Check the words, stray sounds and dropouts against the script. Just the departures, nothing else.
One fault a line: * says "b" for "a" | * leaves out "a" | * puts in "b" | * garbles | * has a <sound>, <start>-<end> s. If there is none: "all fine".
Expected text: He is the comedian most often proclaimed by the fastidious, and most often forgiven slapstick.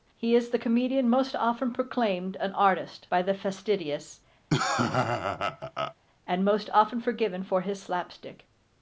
* puts in "an artist"
* has a laugh, 4.5-5.9 s
* puts in "for his"